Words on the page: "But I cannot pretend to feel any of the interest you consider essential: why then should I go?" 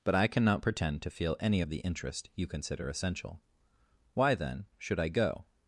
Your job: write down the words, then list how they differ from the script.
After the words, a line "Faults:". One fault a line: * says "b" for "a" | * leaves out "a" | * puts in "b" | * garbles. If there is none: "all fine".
"But I cannot pretend to feel any of the interest you consider essential: why then should I go?"
Faults:
all fine